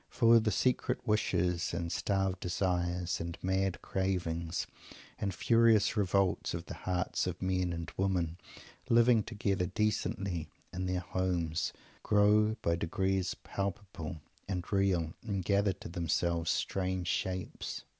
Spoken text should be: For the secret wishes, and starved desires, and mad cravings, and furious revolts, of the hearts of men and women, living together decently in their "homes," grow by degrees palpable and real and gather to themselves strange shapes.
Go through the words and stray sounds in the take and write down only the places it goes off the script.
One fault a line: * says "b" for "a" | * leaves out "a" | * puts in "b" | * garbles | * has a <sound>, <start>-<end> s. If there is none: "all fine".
all fine